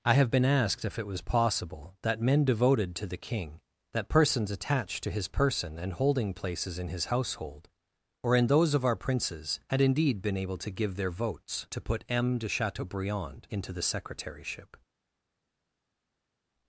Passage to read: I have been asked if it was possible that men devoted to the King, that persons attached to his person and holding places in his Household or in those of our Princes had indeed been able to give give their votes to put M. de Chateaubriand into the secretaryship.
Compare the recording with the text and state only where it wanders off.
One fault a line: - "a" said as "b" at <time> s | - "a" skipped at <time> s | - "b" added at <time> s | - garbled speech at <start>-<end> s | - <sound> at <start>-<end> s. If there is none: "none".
- "give" skipped at 10.9 s